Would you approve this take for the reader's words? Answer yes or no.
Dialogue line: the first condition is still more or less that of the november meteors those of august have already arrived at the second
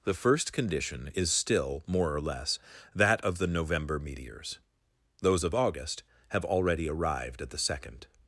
yes